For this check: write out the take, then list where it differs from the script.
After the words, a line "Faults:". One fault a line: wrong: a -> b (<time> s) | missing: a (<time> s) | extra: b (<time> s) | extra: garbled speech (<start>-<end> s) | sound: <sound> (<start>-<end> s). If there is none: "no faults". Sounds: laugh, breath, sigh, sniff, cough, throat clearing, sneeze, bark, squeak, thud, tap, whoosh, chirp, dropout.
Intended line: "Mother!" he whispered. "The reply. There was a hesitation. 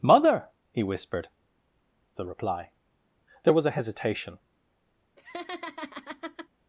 "Mother!" he whispered. "The reply. There was a hesitation.
Faults:
sound: laugh (5.2-6.5 s)